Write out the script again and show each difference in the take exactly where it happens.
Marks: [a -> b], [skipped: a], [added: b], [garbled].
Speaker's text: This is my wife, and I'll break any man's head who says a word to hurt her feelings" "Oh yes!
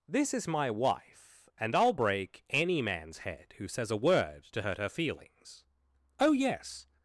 This is my wife, and I'll break any man's head who says a word to hurt her feelings" "Oh yes!